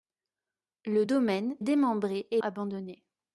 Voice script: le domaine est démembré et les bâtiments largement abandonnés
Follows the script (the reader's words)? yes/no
no